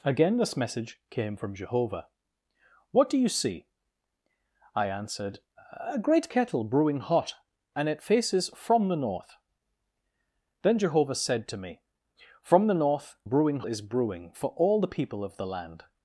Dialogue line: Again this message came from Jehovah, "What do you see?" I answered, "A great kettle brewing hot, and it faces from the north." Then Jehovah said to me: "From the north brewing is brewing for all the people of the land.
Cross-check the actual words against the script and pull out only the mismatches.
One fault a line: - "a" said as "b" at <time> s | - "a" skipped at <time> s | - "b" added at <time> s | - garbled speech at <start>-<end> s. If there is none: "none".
none